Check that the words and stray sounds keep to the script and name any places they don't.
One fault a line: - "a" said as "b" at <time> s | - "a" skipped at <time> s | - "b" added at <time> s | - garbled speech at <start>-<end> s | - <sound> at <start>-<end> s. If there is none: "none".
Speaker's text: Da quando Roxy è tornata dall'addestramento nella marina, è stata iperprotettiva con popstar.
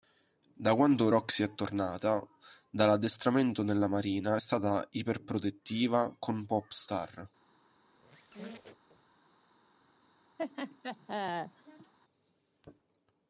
- squeak at 7.9-9.2 s
- laugh at 10.4-11.9 s